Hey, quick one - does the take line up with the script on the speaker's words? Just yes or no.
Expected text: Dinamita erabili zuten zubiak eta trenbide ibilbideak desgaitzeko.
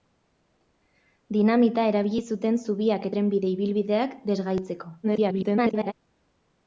no